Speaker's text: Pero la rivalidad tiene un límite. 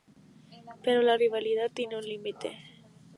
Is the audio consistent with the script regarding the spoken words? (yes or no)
yes